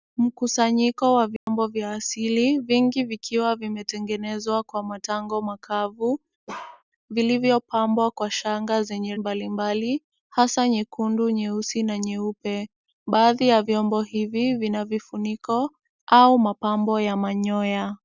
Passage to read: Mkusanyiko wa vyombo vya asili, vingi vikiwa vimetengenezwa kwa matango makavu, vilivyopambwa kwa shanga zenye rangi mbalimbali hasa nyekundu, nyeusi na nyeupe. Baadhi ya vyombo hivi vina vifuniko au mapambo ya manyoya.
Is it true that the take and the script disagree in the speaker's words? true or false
true